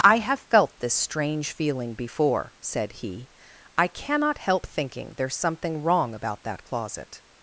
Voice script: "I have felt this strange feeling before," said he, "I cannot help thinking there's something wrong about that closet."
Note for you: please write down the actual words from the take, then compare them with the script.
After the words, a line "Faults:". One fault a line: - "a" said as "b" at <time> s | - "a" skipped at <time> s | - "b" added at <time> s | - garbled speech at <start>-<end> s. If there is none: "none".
"I have felt this strange feeling before," said he, "I cannot help thinking there's something wrong about that closet."
Faults:
none